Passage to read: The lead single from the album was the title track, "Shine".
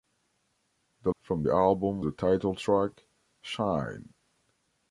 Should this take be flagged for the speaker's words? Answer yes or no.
yes